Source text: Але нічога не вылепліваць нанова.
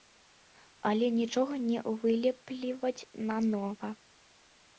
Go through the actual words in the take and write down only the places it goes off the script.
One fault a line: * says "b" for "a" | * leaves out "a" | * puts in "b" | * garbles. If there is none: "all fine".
all fine